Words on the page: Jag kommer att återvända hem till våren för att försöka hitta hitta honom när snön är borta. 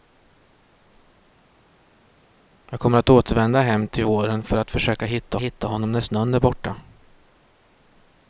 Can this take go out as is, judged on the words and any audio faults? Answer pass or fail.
pass